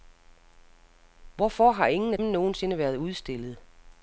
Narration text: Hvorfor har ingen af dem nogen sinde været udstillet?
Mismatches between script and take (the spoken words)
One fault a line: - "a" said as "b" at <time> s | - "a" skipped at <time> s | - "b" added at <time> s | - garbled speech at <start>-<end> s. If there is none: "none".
- "dem" skipped at 2.2 s